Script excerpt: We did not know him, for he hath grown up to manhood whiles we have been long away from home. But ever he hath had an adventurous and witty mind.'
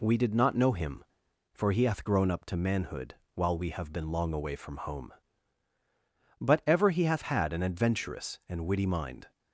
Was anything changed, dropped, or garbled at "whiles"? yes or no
yes